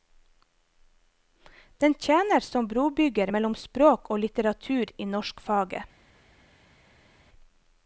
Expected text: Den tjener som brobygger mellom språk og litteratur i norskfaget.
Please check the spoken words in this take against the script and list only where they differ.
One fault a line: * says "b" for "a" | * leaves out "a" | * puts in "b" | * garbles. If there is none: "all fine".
all fine